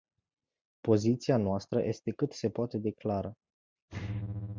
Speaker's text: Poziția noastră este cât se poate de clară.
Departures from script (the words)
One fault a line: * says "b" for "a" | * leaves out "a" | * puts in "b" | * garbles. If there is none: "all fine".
all fine